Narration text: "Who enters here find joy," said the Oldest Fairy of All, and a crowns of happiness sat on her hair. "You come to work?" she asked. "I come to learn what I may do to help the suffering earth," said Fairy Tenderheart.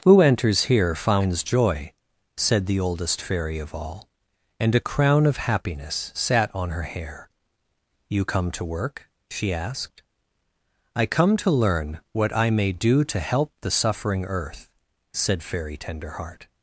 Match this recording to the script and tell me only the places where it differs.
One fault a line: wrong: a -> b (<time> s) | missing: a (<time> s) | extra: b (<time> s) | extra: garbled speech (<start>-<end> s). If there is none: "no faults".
wrong: find -> finds (0.9 s)
wrong: crowns -> crown (4.8 s)